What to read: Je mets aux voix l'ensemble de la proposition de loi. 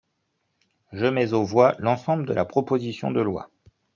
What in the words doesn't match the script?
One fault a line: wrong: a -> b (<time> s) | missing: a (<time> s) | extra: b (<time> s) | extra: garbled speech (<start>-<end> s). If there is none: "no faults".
no faults